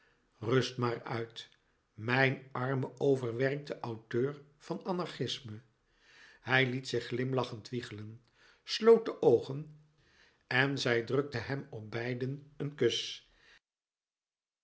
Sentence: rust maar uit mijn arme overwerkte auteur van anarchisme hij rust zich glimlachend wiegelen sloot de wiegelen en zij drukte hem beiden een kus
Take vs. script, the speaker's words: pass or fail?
fail